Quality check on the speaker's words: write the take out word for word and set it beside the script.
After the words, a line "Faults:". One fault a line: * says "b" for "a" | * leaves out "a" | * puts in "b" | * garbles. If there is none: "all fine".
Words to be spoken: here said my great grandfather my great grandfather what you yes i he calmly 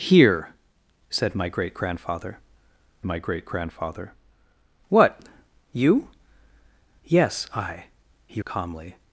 here said my great grandfather my great grandfather what you yes i he calmly
Faults:
all fine